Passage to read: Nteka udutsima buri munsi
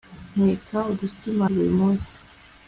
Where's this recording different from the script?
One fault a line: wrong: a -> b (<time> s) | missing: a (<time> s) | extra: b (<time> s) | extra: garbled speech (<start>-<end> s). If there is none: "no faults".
no faults